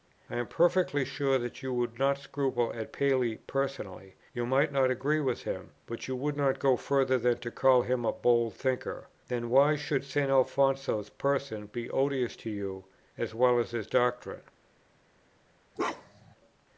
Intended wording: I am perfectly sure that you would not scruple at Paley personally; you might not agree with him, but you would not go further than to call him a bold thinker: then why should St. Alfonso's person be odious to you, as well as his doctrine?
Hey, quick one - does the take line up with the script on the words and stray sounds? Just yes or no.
no